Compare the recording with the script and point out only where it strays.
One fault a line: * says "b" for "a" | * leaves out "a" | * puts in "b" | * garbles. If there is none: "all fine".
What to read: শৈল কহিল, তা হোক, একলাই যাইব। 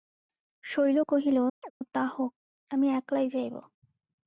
* puts in "আমি"